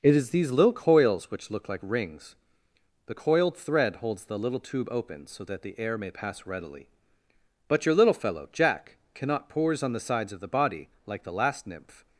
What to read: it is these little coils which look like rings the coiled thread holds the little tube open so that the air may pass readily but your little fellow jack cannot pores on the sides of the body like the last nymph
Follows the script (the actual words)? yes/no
yes